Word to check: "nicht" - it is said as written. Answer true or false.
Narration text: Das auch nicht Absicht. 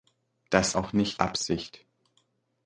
true